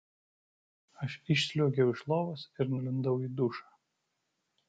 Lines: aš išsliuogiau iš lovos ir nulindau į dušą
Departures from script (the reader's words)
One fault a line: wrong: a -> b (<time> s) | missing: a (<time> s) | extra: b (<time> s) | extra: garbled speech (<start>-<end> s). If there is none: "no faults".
no faults